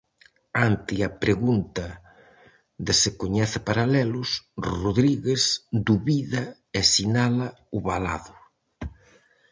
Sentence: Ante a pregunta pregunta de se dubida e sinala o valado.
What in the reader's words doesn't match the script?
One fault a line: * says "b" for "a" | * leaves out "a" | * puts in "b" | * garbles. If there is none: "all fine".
* leaves out "pregunta"
* puts in "coñece paralelos Rodríguez"